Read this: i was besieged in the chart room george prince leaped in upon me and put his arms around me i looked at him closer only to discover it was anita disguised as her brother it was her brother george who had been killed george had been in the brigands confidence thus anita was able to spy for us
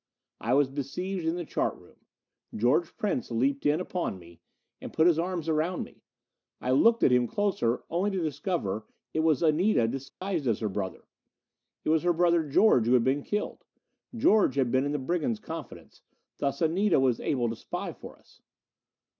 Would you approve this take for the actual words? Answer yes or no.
yes